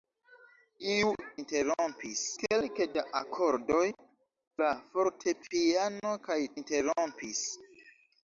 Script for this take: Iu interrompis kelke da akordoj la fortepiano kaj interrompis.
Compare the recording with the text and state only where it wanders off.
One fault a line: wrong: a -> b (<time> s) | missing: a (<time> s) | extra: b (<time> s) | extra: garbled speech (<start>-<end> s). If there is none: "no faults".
no faults